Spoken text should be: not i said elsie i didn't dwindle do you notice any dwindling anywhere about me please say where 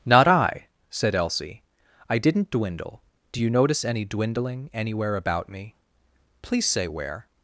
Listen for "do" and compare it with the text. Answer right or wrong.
right